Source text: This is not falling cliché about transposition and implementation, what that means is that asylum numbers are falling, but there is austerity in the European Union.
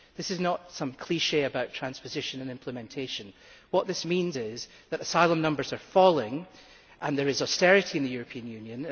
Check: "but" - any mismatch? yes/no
yes